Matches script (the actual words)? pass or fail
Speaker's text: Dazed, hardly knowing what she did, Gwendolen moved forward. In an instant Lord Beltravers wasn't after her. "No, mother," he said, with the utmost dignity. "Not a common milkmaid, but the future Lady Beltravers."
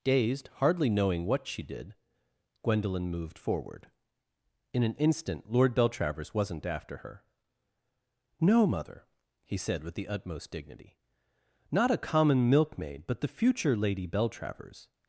pass